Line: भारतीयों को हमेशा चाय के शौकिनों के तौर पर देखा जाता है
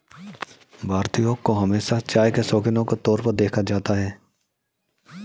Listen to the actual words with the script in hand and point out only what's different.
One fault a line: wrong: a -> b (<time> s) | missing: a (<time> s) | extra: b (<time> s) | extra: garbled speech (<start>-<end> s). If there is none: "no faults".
no faults